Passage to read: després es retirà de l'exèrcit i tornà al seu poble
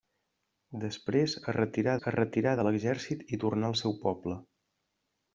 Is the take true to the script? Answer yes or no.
no